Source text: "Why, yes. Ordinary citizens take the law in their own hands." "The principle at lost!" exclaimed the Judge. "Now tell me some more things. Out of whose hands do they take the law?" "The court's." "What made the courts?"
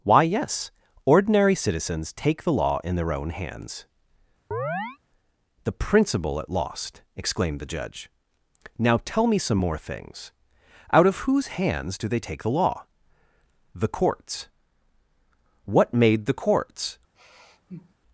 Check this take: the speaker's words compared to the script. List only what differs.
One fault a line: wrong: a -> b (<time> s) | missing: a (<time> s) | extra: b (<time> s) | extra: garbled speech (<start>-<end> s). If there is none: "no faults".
no faults